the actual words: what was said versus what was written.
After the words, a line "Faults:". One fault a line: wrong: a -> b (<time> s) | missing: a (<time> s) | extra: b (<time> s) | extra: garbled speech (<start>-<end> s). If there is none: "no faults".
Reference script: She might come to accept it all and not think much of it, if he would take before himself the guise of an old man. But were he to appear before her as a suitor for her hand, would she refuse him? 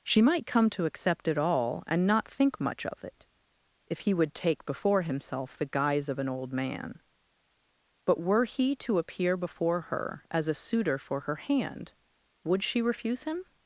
She might come to accept it all and not think much of it, if he would take before himself the guise of an old man. But were he to appear before her as a suitor for her hand, would she refuse him?
Faults:
no faults